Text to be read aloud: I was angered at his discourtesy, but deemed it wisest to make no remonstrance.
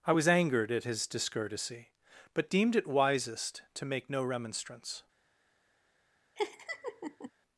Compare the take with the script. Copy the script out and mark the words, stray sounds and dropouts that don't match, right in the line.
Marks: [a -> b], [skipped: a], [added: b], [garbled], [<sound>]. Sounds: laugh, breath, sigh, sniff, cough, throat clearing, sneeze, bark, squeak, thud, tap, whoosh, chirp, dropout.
I was angered at his discourtesy, but deemed it wisest to make no remonstrance. [laugh]